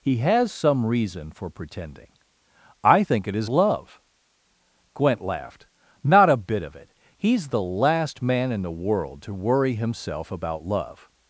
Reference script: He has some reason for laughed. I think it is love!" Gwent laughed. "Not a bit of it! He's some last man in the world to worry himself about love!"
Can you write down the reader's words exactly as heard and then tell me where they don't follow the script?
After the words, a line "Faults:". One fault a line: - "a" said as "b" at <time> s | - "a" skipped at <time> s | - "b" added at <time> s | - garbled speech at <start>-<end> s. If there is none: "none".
He has some reason for pretending. I think it is love!" Gwent laughed. "Not a bit of it! He's the last man in the world to worry himself about love!"
Faults:
- "laughed" said as "pretending" at 1.5 s
- "some" said as "the" at 7.5 s